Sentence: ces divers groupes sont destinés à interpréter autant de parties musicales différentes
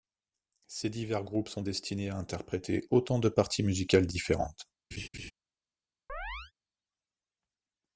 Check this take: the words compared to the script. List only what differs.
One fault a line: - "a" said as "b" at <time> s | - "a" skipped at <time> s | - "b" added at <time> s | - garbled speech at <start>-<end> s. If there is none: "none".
none